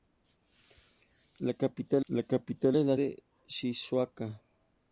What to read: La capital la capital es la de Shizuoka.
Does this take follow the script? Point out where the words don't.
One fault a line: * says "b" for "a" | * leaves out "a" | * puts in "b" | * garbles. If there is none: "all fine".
all fine